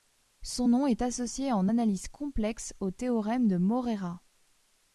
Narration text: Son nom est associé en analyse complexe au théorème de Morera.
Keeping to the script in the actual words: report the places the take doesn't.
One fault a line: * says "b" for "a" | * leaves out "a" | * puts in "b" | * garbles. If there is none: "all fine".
all fine